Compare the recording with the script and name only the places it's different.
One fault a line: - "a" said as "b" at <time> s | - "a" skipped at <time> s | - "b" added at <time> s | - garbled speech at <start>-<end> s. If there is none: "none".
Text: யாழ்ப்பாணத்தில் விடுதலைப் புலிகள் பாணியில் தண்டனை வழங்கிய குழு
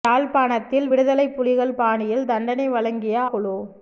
none